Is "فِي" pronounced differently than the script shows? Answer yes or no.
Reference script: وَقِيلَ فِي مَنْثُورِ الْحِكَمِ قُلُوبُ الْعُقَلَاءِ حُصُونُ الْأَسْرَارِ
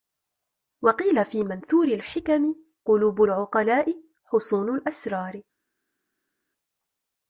no